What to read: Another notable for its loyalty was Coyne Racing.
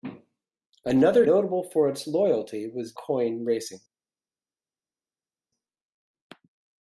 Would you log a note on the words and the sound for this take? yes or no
no